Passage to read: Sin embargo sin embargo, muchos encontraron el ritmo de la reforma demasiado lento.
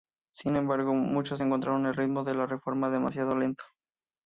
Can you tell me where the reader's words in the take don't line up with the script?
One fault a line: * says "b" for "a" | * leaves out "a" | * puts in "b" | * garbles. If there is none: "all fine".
* leaves out "sin embargo"